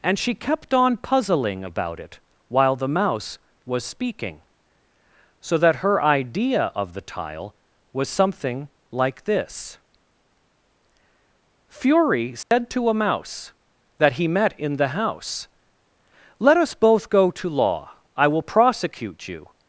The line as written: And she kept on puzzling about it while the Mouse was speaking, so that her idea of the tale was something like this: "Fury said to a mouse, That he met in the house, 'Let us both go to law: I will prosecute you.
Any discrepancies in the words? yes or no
yes